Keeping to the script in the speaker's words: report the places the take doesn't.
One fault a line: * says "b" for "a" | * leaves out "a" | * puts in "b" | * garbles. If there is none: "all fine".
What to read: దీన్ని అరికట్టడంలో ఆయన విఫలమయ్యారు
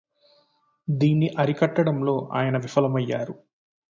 all fine